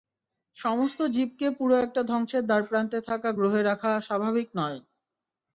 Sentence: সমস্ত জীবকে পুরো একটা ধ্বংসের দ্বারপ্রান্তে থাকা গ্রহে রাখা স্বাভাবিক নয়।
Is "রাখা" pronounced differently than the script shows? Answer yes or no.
no